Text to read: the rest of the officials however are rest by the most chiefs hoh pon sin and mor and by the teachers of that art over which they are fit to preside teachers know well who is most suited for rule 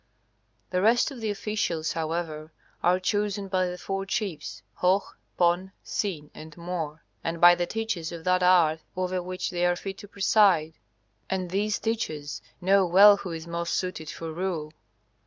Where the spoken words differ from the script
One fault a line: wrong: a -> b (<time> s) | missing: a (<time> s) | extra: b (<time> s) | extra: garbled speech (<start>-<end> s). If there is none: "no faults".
wrong: rest -> chosen (3.0 s)
wrong: most -> four (3.8 s)
extra: and these (11.3 s)